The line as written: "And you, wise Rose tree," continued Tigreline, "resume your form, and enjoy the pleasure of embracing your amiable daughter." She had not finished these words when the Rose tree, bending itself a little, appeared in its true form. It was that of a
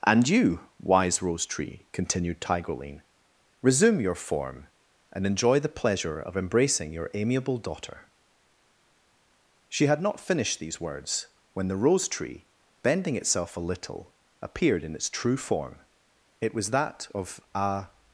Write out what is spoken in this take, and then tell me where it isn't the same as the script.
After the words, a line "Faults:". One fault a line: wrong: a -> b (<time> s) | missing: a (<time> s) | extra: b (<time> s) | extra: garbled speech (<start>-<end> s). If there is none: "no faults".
"And you, wise Rose tree," continued Tigreline, "resume your form, and enjoy the pleasure of embracing your amiable daughter." She had not finished these words when the Rose tree, bending itself a little, appeared in its true form. It was that of a
Faults:
no faults